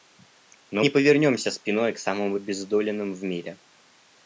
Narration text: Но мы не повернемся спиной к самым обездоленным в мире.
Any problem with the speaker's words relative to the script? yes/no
yes